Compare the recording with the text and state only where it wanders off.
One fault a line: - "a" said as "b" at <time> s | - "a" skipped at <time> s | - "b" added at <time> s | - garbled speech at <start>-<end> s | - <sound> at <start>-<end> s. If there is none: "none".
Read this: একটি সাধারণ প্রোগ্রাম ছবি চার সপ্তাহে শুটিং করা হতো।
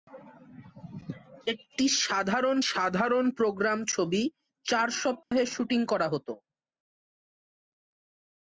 - "সাধারণ" added at 2.7 s
- dropout at 5.2-5.3 s